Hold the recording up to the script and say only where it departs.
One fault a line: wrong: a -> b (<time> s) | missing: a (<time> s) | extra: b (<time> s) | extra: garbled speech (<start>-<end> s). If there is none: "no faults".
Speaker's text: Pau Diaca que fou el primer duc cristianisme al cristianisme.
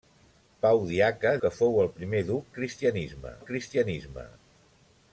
no faults